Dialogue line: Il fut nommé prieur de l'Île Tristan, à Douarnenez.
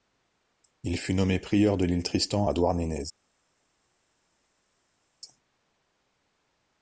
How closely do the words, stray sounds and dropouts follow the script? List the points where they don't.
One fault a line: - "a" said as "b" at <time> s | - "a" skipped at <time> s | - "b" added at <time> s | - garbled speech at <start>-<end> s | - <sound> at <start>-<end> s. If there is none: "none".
none